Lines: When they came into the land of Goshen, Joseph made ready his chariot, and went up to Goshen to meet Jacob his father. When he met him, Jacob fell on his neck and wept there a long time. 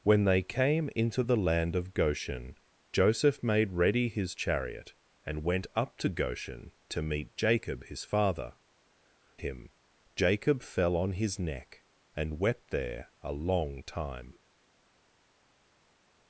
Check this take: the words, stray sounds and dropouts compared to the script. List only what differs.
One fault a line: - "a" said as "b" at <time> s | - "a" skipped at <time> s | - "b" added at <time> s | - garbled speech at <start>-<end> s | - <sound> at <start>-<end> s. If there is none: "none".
- "When he met" skipped at 8.5 s